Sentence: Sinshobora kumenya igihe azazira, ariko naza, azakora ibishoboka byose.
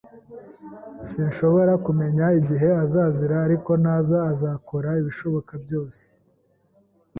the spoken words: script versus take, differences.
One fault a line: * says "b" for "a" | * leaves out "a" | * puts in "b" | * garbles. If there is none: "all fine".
all fine